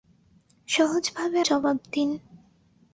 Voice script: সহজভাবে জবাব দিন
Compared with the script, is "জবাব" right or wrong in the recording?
right